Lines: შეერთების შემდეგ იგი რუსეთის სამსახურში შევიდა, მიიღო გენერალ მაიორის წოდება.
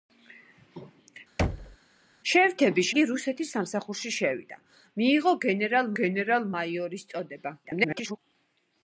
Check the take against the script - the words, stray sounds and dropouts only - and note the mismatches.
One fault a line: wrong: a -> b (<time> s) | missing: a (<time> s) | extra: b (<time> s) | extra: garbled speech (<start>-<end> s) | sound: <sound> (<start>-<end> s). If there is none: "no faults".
sound: thud (1.4-1.8 s)
missing: შემდეგ (2.9 s)
extra: გენერალ (6.0 s)
extra: garbled speech (7.6-8.2 s)